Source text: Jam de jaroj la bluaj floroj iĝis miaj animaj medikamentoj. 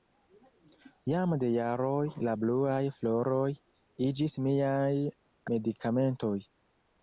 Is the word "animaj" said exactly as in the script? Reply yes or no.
no